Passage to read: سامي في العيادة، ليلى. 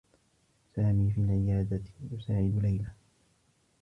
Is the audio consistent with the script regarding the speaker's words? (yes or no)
no